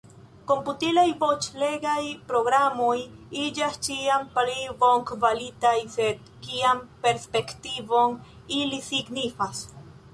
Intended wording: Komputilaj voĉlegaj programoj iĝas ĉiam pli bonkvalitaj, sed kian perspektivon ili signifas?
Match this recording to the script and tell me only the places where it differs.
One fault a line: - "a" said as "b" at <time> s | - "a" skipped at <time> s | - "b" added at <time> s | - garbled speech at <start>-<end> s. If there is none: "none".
none